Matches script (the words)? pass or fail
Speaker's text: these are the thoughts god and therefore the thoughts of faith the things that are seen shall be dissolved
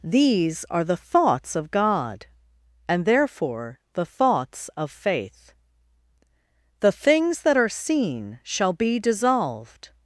fail